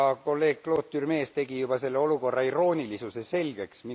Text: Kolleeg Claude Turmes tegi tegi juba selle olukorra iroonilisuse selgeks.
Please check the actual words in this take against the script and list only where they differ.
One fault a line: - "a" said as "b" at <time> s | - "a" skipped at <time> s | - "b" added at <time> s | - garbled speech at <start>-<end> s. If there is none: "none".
- "tegi" skipped at 1.6 s